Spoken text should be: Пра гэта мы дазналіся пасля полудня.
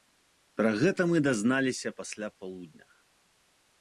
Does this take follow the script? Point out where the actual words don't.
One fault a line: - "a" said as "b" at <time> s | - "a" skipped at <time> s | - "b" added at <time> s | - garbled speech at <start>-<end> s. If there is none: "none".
none